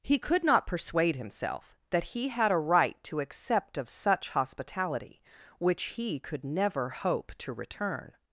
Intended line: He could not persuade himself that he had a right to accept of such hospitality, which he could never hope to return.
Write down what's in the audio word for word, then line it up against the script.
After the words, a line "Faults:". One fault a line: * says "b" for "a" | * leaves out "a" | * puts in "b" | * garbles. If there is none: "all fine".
He could not persuade himself that he had a right to accept of such hospitality, which he could never hope to return.
Faults:
all fine